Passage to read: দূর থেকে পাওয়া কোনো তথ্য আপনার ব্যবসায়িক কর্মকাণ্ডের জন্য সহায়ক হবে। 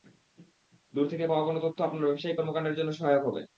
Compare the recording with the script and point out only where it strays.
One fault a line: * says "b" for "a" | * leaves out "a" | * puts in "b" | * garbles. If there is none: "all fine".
all fine